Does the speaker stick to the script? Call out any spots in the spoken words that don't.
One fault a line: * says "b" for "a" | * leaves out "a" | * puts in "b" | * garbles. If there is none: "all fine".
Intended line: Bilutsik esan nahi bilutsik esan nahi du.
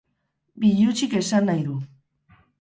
* leaves out "bilutsik esan nahi"